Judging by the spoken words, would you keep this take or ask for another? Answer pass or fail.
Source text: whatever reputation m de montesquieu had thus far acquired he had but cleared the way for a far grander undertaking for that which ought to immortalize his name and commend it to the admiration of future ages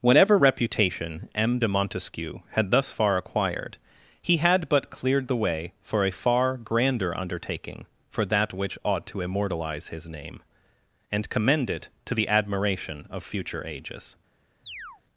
pass